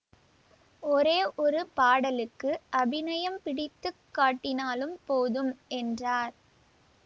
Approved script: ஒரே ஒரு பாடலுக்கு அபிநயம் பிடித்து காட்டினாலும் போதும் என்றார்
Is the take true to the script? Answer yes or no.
yes